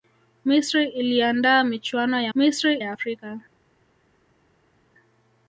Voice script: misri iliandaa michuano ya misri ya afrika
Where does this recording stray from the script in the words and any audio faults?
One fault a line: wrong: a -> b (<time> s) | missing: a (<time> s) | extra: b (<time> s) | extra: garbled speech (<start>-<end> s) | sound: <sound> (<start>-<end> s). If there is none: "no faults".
no faults